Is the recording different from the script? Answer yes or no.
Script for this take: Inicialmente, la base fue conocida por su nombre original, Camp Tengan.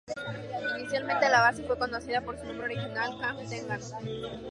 no